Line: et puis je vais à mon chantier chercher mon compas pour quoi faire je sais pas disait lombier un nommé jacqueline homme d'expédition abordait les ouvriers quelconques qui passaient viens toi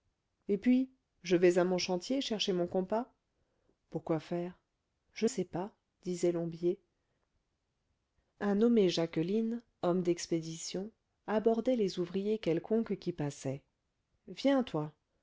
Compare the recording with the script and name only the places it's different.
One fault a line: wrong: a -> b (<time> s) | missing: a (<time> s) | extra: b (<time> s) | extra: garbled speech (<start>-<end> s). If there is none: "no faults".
no faults